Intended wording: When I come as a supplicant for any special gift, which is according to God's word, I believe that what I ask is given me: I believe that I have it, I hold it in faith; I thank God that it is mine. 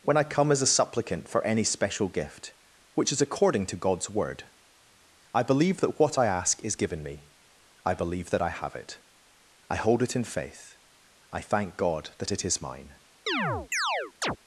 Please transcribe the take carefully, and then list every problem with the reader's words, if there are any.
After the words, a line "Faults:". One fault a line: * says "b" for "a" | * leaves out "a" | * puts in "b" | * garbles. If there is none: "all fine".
When I come as a supplicant for any special gift, which is according to God's word, I believe that what I ask is given me: I believe that I have it, I hold it in faith; I thank God that it is mine.
Faults:
all fine